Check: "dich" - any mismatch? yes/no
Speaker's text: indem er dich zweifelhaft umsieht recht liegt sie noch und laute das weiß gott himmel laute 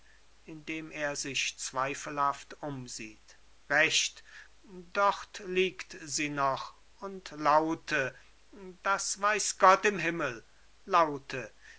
yes